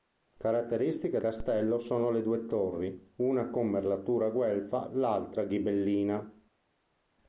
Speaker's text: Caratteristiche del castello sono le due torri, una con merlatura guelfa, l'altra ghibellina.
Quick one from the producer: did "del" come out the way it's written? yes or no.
no